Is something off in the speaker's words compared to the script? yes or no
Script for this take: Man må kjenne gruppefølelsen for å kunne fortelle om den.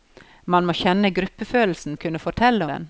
yes